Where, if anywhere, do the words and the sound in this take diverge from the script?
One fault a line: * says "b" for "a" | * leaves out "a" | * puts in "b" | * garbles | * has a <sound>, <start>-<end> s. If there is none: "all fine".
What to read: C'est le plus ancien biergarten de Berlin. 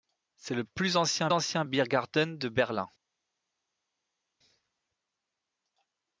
* puts in "ancien"